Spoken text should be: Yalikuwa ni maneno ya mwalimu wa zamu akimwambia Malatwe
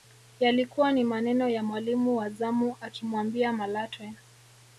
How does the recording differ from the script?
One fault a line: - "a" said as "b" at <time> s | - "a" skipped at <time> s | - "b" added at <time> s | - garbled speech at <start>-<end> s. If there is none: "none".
none